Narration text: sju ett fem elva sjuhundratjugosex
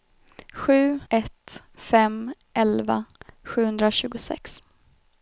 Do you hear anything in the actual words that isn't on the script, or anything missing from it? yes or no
no